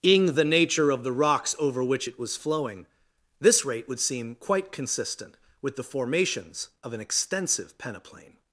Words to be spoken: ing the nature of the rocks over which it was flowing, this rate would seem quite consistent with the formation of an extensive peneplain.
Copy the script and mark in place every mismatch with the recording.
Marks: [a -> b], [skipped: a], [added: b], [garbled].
ing the nature of the rocks over which it was flowing, this rate would seem quite consistent with the [formation -> formations] of an extensive peneplain.